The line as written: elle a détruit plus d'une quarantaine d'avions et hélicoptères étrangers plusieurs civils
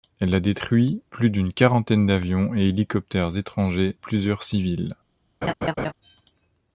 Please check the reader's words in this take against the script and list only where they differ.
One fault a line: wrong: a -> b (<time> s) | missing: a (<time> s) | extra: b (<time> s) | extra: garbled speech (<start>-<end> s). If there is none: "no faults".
no faults